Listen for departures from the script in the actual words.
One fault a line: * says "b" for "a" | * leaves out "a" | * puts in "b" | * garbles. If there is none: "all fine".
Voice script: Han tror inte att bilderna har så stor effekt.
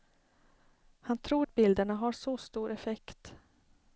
* leaves out "inte"